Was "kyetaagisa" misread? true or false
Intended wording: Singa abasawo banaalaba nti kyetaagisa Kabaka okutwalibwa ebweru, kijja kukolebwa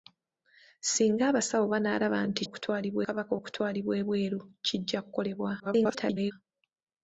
true